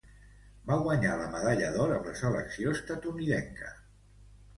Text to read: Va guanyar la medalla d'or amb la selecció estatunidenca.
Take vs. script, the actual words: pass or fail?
pass